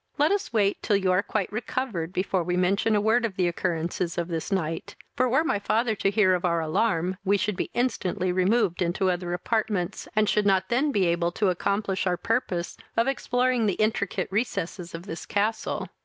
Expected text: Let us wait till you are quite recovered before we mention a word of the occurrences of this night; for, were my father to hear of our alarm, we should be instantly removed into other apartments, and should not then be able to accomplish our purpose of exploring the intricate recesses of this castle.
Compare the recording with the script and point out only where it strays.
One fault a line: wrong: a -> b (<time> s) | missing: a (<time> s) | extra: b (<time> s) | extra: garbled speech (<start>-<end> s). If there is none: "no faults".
no faults